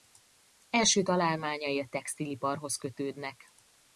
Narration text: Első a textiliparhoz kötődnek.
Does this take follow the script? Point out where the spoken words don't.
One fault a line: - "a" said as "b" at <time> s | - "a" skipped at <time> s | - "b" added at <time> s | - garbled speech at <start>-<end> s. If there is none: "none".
- "találmányai" added at 1.0 s